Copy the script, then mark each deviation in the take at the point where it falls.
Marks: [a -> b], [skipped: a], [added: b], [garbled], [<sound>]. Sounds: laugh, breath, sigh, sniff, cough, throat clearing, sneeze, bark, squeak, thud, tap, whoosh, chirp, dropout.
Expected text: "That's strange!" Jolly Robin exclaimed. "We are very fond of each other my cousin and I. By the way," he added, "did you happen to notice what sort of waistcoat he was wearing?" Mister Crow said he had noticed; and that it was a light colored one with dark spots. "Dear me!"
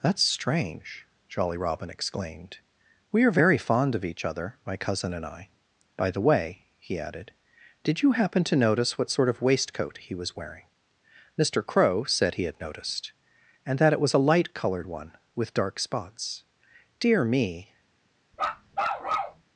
"That's strange!" Jolly Robin exclaimed. "We are very fond of each other my cousin and I. By the way," he added, "did you happen to notice what sort of waistcoat he was wearing?" Mister Crow said he had noticed; and that it was a light colored one with dark spots. "Dear me!" [bark]